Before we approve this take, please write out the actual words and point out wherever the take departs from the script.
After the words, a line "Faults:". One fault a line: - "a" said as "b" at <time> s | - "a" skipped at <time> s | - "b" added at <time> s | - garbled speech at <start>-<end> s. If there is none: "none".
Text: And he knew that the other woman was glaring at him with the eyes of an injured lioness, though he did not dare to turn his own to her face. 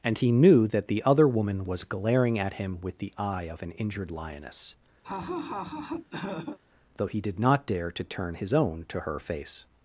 And he knew that the other woman was glaring at him with the eye of an injured lioness, though he did not dare to turn his own to her face.
Faults:
- "eyes" said as "eye" at 3.2 s